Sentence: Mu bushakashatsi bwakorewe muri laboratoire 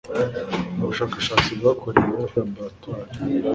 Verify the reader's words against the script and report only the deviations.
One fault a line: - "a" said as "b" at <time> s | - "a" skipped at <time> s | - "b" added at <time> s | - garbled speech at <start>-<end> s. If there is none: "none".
- "muri" skipped at 2.2 s